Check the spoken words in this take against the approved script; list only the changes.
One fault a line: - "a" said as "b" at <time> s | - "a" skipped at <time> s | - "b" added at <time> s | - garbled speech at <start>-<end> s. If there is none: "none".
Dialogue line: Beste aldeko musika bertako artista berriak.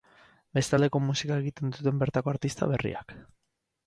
- "egiten duten" added at 1.4 s